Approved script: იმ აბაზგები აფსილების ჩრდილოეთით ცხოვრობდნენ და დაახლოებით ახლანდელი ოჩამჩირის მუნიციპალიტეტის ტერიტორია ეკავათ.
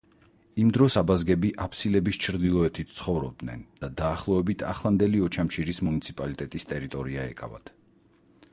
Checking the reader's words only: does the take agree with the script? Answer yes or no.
no